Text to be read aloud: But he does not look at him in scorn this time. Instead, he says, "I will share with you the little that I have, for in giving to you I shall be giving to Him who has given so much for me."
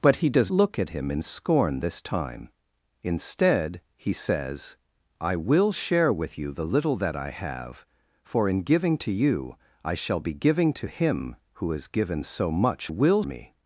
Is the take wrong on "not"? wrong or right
wrong